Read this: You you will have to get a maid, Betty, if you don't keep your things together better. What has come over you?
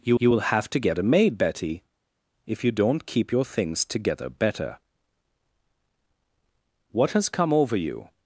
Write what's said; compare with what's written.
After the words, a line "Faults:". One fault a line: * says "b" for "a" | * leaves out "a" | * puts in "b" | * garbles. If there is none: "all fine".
You you will have to get a maid, Betty, if you don't keep your things together better. What has come over you?
Faults:
all fine